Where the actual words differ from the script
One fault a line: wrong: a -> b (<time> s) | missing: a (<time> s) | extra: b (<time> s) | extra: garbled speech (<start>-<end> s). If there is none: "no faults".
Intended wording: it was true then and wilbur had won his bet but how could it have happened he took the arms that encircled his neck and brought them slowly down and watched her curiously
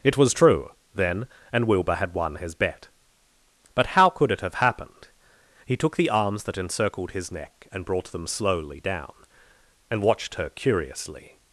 no faults